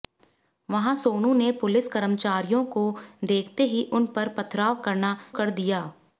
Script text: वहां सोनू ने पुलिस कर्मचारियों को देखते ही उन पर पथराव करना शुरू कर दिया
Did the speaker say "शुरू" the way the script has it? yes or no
no